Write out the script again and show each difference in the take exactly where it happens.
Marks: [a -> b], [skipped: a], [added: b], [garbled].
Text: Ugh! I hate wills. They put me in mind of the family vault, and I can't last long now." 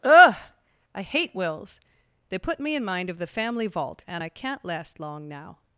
Ugh! I hate wills. They put me in mind of the family vault, and I can't last long now."